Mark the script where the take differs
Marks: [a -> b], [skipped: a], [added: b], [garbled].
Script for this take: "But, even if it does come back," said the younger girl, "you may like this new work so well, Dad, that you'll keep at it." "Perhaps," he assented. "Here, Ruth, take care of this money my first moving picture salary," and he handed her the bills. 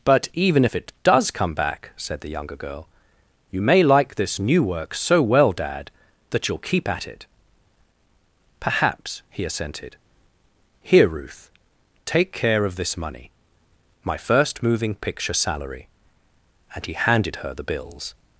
"But, even if it does come back," said the younger girl, "you may like this new work so well, Dad, that you'll keep at it." "Perhaps," he assented. "Here, Ruth, take care of this money my first moving picture salary," and he handed her the bills.